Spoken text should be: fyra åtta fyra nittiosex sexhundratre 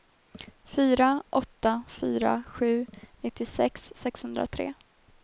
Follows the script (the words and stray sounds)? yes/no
no